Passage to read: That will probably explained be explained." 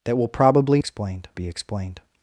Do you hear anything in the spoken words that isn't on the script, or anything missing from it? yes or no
no